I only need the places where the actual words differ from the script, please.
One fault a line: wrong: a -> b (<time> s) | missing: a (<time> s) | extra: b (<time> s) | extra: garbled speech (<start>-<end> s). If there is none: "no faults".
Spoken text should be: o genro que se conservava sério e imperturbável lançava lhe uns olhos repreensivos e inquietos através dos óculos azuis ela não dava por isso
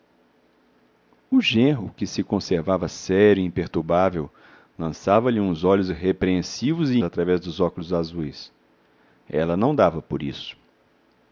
missing: inquietos (7.0 s)